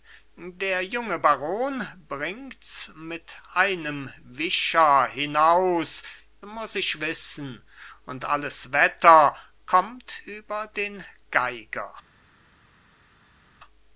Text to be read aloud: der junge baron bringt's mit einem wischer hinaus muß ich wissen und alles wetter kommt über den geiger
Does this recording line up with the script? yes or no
yes